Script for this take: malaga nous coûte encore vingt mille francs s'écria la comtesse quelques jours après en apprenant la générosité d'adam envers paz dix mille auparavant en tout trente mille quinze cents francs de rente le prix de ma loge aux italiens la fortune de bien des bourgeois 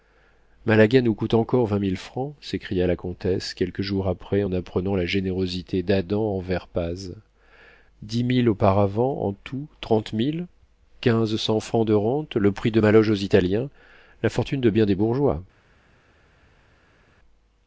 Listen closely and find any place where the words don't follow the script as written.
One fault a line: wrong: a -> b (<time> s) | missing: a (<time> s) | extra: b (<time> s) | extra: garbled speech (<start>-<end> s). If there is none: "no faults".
no faults